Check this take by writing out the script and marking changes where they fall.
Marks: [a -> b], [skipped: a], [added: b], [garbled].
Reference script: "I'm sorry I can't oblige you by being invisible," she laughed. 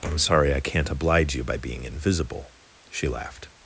"I'm sorry I can't oblige you by being invisible," she laughed.